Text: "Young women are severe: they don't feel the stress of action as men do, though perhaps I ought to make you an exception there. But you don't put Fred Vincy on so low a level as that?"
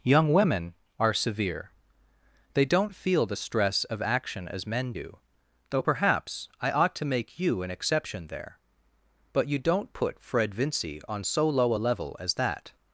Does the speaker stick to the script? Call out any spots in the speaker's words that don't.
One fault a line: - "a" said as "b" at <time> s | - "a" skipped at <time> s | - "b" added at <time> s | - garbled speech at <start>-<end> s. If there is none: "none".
none